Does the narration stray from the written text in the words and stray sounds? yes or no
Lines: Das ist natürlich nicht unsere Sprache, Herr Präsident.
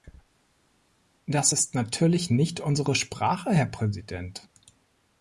no